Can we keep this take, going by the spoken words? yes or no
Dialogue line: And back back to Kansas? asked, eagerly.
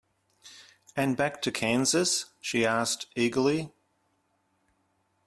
no